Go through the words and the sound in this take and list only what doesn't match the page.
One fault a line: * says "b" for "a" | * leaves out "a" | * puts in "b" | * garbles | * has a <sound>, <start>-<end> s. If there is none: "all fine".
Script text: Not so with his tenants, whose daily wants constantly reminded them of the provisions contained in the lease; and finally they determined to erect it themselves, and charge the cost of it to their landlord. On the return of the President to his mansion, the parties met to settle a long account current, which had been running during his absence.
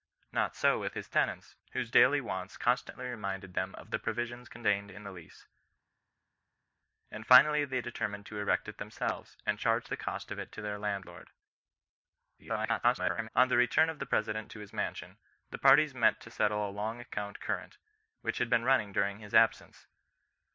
* garbles